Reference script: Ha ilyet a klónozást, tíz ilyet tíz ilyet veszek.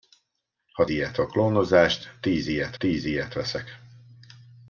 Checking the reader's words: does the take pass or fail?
pass